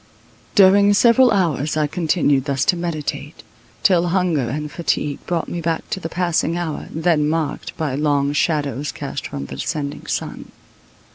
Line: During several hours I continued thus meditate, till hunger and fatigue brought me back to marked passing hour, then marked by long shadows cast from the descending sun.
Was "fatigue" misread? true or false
false